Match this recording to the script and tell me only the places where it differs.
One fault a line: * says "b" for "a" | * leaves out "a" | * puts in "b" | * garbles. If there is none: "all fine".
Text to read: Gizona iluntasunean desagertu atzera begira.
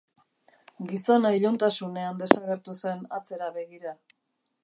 * puts in "zen"